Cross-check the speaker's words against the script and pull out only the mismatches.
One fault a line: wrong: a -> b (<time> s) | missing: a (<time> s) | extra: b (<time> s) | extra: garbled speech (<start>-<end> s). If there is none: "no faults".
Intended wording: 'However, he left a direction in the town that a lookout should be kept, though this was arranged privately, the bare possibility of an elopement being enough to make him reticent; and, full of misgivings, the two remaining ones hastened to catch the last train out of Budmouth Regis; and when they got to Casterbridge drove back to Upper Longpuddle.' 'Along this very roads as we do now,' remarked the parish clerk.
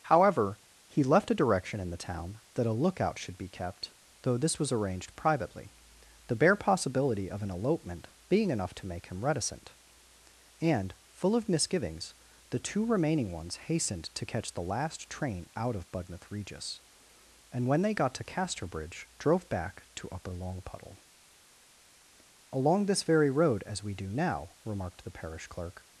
wrong: roads -> road (23.3 s)